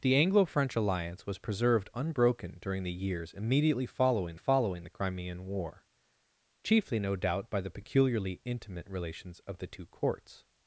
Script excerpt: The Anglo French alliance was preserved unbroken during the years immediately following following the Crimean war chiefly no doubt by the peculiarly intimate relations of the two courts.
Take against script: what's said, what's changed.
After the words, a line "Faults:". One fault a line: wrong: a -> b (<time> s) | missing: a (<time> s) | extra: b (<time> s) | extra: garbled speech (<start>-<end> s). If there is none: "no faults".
The Anglo French alliance was preserved unbroken during the years immediately following following the Crimean war chiefly no doubt by the peculiarly intimate relations of the two courts.
Faults:
no faults